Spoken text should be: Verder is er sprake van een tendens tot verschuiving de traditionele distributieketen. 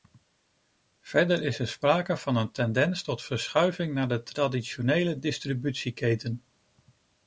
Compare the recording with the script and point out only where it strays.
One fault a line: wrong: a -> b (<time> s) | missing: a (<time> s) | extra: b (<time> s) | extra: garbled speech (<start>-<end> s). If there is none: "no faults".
extra: naar (3.9 s)